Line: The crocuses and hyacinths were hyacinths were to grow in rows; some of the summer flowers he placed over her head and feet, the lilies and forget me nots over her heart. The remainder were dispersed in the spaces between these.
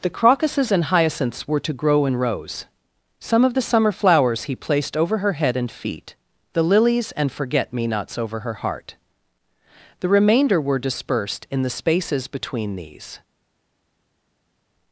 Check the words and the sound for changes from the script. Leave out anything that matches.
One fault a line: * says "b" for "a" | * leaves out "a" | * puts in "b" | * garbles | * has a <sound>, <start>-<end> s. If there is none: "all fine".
* leaves out "hyacinths were"